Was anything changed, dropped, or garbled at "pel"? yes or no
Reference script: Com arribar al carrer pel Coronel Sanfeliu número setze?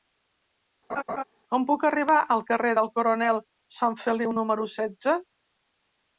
yes